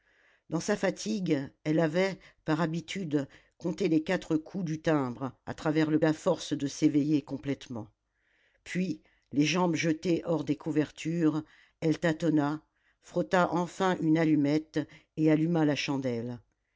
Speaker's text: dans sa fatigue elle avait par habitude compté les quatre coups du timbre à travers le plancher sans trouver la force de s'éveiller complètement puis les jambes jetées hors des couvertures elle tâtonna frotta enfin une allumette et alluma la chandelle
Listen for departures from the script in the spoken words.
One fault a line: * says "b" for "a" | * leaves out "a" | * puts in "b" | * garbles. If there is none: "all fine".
* leaves out "plancher sans trouver"